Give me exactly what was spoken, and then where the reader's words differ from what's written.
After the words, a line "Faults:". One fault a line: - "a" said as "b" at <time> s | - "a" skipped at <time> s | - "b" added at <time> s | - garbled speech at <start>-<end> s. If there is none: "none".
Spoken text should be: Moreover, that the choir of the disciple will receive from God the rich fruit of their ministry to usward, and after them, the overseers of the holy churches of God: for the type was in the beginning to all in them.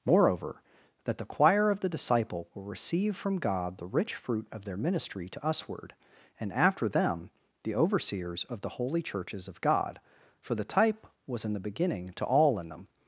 Moreover, that the choir of the disciple will receive from God the rich fruit of their ministry to usward, and after them, the overseers of the holy churches of God: for the type was in the beginning to all in them.
Faults:
none